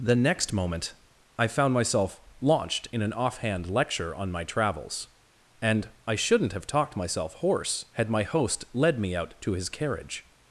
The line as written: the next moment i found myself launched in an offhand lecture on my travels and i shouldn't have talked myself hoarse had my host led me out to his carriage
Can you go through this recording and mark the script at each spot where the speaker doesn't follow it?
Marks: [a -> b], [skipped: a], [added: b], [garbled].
the next moment i found myself launched in an offhand lecture on my travels and i shouldn't have talked myself hoarse had my host led me out to his carriage